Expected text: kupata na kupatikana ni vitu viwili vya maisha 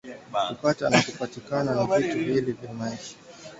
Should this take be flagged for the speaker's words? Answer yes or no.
no